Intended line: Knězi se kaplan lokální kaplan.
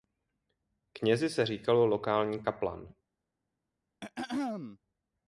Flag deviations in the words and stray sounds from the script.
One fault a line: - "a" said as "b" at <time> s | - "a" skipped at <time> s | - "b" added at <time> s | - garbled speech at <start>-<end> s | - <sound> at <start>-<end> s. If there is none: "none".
- "kaplan" said as "říkalo" at 1.4 s
- throat clearing at 4.0-4.8 s